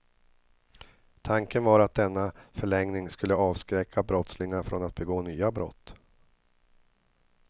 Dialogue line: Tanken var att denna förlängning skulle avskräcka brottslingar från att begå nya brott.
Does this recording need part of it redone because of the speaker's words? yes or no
no